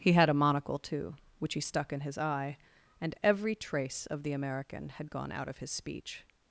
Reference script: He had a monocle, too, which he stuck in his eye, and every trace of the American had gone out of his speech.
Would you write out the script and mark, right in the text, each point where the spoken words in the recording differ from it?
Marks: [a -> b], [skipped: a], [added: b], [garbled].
He had a monocle, too, which he stuck in his eye, and every trace of the American had gone out of his speech.